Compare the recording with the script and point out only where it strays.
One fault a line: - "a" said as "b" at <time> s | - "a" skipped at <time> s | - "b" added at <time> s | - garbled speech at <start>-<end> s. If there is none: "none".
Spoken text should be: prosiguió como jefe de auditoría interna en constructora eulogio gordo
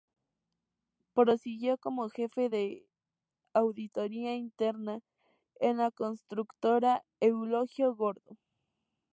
- "la" added at 5.8 s